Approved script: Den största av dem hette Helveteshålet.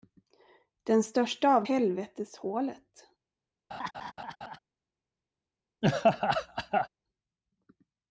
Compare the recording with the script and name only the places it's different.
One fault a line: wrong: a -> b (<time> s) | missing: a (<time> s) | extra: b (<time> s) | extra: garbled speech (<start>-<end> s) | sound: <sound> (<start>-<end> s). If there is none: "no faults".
missing: dem hette (1.6 s)
sound: laugh (3.7-4.6 s)
sound: laugh (5.8-6.9 s)